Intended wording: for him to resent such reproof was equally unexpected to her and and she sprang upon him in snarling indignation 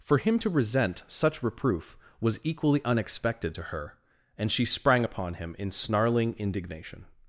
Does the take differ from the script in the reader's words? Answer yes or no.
yes